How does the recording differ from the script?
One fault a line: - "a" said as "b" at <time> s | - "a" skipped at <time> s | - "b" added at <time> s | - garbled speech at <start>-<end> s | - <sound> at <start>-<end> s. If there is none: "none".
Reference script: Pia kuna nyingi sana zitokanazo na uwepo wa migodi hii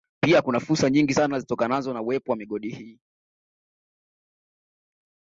- "fursa" added at 0.6 s